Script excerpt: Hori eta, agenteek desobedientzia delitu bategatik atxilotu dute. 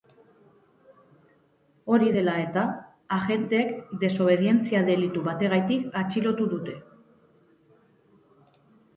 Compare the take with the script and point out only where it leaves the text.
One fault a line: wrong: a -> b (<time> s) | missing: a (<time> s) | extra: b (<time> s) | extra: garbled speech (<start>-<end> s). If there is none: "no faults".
extra: dela (2.1 s)